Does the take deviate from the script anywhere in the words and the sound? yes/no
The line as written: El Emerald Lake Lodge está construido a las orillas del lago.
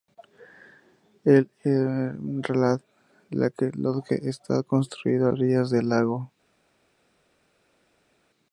yes